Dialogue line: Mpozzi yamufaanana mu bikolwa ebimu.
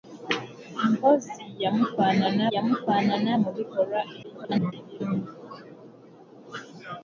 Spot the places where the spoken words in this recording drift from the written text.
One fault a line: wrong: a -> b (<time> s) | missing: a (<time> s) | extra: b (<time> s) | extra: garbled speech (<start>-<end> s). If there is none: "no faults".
extra: yamufaanana (2.5 s)
extra: garbled speech (4.2-4.7 s)